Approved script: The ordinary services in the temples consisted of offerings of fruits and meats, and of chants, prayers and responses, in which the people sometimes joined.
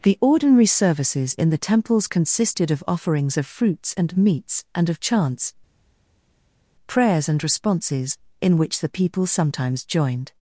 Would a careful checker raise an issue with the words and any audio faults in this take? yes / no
no